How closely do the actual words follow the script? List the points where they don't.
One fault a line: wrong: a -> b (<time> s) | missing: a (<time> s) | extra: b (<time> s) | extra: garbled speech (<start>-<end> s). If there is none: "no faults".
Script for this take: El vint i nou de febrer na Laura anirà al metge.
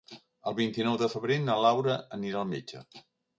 no faults